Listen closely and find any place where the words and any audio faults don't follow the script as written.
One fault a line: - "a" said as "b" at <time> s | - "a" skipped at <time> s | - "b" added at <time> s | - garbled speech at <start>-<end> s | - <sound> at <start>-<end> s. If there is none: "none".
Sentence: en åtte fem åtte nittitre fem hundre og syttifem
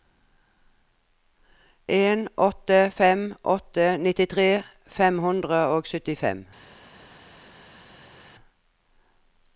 none